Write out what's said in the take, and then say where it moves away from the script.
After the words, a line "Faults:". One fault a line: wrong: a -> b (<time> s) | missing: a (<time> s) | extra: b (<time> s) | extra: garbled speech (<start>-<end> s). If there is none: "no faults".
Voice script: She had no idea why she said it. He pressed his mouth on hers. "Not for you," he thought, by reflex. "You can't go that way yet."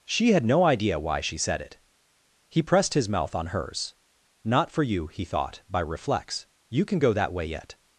She had no idea why she said it. He pressed his mouth on hers. "Not for you," he thought, by reflex. "You can go that way yet."
Faults:
wrong: can't -> can (6.8 s)